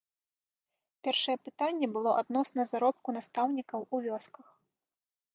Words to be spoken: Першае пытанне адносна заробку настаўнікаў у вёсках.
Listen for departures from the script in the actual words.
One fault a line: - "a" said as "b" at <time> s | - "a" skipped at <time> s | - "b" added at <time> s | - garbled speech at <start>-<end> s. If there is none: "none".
- "было" added at 2.0 s